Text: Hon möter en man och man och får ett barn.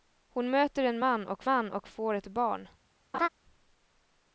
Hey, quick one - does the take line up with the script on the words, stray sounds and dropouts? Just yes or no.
no